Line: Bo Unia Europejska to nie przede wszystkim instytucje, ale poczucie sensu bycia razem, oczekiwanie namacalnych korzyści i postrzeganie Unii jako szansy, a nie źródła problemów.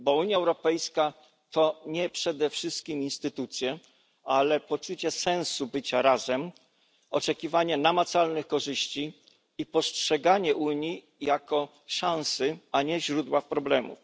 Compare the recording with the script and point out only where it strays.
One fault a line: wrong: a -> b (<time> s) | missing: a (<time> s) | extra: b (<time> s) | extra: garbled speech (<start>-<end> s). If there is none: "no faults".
no faults